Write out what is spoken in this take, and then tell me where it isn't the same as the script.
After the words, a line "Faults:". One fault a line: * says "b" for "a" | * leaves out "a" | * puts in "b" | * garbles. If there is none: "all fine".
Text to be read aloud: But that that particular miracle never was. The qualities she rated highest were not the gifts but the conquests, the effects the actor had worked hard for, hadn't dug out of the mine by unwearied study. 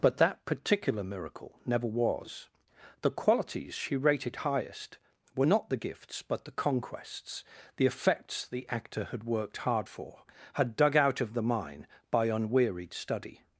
But that particular miracle never was. The qualities she rated highest were not the gifts but the conquests, the effects the actor had worked hard for, had dug out of the mine by unwearied study.
Faults:
* leaves out "that"
* says "had" for "hadn't"